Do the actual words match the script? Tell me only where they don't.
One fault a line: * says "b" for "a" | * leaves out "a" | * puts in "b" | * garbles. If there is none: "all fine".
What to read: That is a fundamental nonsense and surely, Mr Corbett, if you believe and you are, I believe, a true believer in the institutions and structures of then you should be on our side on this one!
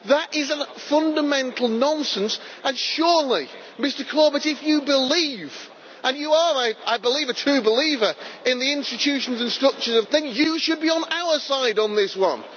all fine